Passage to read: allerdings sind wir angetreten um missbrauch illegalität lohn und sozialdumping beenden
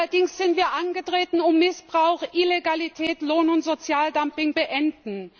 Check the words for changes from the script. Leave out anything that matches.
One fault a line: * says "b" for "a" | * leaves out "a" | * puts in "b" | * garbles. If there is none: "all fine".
all fine